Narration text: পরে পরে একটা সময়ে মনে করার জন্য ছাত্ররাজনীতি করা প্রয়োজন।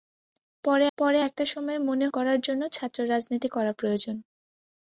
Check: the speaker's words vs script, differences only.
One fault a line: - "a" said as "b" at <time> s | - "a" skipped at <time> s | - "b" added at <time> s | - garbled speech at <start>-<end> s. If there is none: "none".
none